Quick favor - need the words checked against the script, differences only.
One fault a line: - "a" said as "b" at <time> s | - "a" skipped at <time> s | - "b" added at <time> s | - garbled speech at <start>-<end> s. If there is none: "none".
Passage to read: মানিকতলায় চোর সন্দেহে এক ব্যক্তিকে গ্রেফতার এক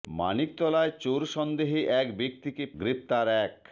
none